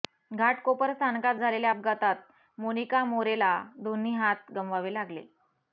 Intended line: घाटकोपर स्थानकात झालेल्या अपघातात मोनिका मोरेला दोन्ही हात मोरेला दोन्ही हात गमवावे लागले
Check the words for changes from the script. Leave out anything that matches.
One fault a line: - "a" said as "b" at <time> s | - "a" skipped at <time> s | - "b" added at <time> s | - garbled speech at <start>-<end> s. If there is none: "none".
- "मोरेला दोन्ही हात" skipped at 4.5 s